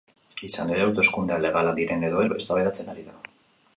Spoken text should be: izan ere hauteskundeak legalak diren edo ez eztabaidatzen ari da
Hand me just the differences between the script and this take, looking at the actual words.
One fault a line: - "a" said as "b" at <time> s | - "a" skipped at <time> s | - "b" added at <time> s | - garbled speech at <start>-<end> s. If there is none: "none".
none